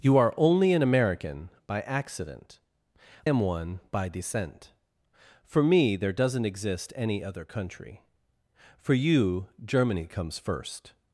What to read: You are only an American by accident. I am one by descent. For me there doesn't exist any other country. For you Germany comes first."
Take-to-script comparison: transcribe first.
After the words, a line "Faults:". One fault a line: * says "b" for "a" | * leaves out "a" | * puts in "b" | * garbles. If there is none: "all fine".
You are only an American by accident. am one by descent. For me there doesn't exist any other country. For you Germany comes first."
Faults:
* leaves out "I"